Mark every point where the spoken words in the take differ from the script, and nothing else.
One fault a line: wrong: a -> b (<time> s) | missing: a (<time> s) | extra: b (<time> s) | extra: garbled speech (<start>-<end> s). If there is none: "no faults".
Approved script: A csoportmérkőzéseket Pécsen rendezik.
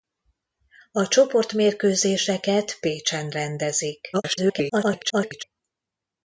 extra: garbled speech (4.1-5.4 s)